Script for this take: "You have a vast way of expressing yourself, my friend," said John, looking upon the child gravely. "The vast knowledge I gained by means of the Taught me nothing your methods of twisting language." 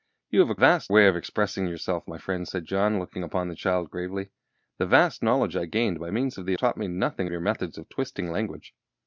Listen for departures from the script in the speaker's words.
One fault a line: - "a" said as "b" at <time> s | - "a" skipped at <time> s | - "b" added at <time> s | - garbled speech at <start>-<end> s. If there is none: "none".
none